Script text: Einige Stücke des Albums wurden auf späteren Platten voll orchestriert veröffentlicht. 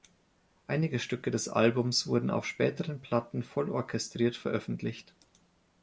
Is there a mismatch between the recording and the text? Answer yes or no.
no